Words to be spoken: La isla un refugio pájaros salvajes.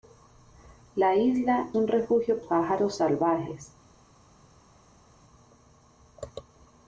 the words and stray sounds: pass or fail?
pass